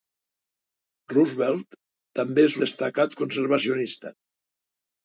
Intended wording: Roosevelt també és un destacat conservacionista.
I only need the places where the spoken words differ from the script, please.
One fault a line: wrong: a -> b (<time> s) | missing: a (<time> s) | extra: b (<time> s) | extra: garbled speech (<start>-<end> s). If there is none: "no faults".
missing: un (2.6 s)